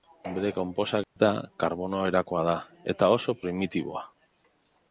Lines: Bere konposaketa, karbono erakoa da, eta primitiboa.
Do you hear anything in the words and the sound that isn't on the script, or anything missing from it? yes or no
yes